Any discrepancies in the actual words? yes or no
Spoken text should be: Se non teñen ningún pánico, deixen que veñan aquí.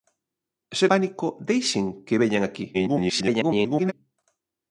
yes